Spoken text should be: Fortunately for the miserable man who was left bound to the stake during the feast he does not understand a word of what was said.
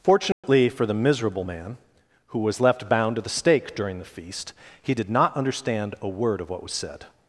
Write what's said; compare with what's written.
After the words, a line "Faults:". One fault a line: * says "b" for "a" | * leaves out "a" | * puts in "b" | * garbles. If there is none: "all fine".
Fortunately for the miserable man who was left bound to the stake during the feast he did not understand a word of what was said.
Faults:
* says "did" for "does"